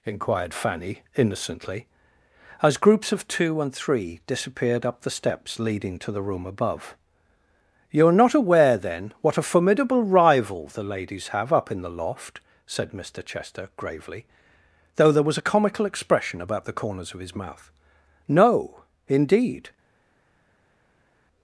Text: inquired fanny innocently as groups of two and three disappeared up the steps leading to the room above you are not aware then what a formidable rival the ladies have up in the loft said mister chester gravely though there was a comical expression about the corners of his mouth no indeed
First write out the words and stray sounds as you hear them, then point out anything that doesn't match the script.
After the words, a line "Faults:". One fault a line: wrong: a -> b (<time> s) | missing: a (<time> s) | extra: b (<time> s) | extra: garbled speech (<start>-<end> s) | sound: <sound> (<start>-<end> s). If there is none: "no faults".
inquired fanny innocently as groups of two and three disappeared up the steps leading to the room above you are not aware then what a formidable rival the ladies have up in the loft said mister chester gravely though there was a comical expression about the corners of his mouth no indeed
Faults:
no faults